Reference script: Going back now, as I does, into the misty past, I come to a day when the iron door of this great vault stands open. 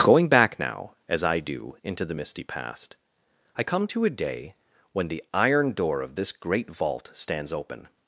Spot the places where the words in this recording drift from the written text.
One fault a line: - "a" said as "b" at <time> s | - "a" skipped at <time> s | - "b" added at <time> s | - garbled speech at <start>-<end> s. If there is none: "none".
- "does" said as "do" at 1.4 s